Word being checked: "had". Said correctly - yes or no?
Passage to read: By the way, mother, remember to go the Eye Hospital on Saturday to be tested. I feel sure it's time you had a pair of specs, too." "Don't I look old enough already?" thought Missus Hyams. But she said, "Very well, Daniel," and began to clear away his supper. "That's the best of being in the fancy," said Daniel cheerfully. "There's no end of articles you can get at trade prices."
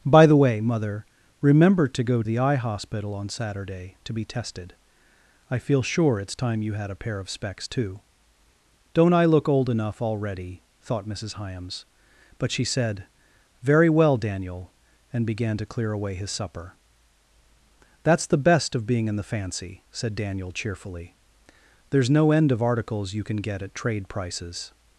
yes